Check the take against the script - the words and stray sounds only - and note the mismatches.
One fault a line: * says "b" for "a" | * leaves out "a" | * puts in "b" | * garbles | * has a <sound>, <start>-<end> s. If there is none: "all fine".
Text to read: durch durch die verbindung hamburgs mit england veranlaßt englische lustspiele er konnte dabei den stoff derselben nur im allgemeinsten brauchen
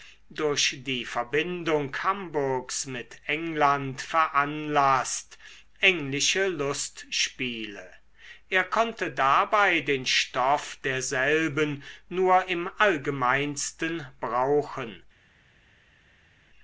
* leaves out "durch"